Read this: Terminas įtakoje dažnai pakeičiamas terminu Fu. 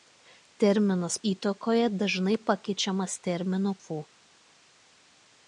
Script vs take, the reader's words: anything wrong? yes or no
no